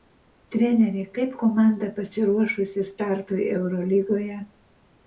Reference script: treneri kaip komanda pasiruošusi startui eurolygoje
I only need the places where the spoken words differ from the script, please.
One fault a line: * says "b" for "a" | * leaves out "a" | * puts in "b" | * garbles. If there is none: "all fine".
all fine